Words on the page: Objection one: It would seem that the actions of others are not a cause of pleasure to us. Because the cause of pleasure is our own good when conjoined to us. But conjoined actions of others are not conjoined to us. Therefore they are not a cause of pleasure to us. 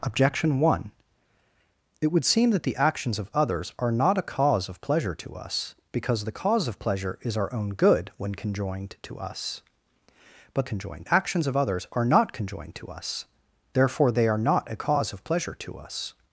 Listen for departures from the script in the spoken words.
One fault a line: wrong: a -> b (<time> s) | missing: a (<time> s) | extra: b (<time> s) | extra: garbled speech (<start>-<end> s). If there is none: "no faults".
no faults